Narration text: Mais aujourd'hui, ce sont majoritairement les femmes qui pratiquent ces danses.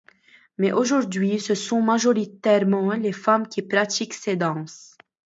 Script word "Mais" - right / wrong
right